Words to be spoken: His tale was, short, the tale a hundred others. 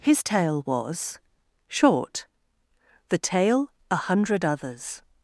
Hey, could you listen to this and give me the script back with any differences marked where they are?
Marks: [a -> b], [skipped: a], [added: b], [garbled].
His tale was, short, the tale a hundred others.